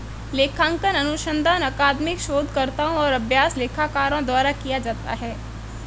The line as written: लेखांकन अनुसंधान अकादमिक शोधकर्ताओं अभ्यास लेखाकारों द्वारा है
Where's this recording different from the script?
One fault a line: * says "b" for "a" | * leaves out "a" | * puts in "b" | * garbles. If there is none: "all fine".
* puts in "और"
* puts in "किया जाता"